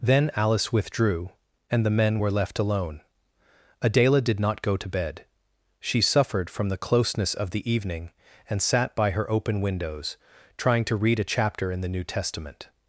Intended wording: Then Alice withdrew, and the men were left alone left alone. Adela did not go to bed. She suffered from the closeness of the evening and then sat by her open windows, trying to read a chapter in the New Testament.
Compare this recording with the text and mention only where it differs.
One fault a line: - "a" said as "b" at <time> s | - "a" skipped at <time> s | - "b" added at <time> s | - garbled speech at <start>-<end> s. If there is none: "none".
- "left alone" skipped at 3.0 s
- "then" skipped at 8.6 s